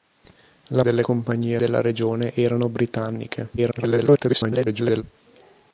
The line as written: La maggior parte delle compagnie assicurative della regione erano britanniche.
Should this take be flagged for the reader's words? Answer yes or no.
yes